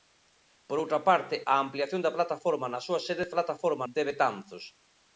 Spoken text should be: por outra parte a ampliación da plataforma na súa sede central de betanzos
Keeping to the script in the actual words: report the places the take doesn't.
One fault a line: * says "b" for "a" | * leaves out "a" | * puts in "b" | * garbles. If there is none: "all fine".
* says "plataforma" for "central"